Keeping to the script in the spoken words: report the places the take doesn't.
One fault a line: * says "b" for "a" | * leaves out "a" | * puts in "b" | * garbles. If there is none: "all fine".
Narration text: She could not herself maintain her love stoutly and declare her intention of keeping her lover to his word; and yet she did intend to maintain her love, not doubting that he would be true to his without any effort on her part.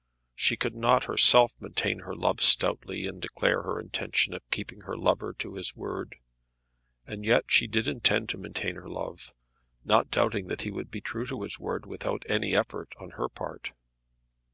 * puts in "word"